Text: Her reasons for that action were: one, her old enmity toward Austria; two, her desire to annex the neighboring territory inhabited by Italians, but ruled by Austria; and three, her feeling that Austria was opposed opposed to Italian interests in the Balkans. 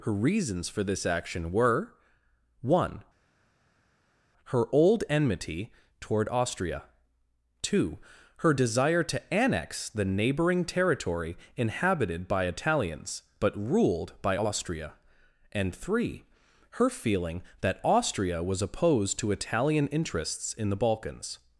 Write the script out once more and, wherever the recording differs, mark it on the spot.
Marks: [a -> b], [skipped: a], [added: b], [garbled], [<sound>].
Her reasons for [that -> this] action were: one, her old enmity toward Austria; two, her desire to annex the neighboring territory inhabited by Italians, but ruled by Austria; and three, her feeling that Austria was opposed [skipped: opposed] to Italian interests in the Balkans.